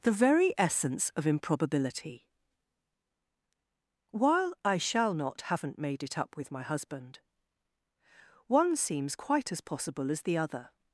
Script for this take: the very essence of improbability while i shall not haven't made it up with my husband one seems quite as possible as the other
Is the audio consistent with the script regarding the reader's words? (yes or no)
yes